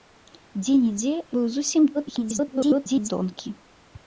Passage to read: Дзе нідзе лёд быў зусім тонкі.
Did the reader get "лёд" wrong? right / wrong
wrong